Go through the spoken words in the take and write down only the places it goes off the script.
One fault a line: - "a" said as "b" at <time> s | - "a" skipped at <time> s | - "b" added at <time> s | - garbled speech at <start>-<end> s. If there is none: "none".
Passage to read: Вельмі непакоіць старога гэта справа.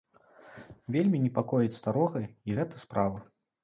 - "і" added at 2.3 s